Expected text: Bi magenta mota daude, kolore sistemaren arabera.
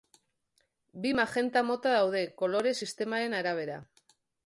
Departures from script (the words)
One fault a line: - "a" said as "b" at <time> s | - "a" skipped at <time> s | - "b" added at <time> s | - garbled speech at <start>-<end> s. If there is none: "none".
none